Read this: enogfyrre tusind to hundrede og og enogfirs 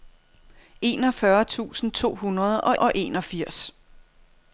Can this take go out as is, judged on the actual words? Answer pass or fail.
pass